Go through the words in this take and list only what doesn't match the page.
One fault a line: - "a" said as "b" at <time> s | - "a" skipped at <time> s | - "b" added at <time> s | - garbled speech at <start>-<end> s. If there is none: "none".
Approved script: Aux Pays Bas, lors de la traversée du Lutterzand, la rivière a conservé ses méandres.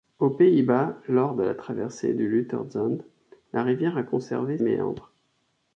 - "ses" skipped at 4.6 s